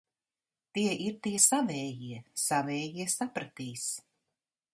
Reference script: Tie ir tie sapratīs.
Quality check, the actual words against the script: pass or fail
fail